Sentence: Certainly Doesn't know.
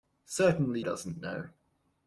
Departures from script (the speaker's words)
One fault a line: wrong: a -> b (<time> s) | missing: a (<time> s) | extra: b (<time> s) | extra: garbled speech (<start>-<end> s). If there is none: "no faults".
no faults